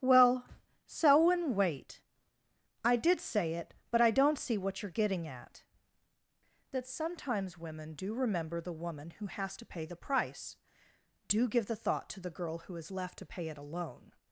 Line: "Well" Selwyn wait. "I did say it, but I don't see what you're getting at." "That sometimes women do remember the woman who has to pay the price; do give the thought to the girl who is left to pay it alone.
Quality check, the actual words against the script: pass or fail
pass